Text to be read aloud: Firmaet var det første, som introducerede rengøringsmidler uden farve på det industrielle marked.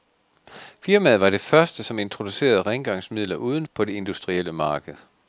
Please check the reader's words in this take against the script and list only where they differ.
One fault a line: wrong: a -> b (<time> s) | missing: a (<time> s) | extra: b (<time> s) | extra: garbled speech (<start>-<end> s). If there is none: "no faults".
missing: farve (3.7 s)